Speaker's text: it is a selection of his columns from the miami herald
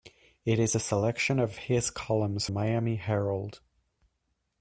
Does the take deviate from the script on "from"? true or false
true